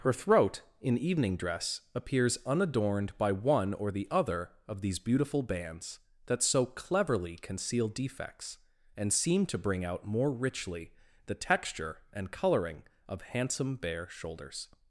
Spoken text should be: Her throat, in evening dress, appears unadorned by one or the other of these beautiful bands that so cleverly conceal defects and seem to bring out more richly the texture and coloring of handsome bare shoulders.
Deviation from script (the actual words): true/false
false